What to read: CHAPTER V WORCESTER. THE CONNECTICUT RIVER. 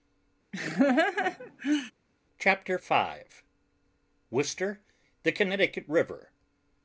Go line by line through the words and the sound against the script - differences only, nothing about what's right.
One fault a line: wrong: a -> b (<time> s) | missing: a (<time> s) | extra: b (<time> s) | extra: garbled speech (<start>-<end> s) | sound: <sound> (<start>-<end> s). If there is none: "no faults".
sound: laugh (0.5-1.9 s)